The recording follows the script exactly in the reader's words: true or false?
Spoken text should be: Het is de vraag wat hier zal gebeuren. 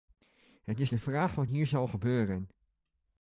true